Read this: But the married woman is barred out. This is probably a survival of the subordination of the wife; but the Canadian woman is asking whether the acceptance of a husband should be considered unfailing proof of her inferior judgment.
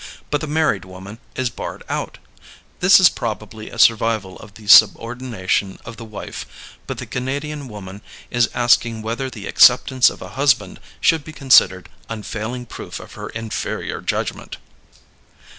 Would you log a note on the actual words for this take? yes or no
no